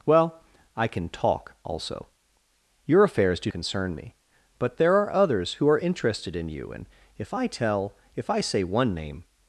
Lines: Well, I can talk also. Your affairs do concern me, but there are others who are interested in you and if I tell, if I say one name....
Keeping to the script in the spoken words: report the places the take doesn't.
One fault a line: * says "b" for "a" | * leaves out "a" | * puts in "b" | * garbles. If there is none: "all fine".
all fine